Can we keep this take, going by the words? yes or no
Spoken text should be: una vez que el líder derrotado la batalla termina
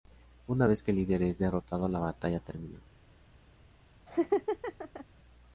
no